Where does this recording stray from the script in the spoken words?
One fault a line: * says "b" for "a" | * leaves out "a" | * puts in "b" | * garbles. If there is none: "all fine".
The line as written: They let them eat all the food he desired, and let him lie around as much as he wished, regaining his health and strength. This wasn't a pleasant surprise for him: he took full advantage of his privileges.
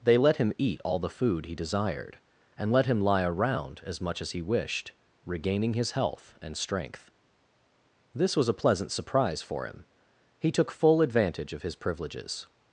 * says "him" for "them"
* says "was" for "wasn't"